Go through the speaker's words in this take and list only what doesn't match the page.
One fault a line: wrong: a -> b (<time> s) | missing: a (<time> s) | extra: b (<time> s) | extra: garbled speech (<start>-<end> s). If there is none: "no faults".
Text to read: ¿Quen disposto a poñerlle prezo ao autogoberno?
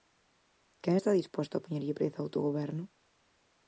extra: está (0.9 s)